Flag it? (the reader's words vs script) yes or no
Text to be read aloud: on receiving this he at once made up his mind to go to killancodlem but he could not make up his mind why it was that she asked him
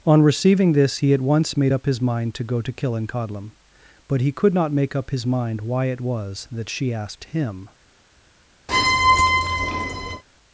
no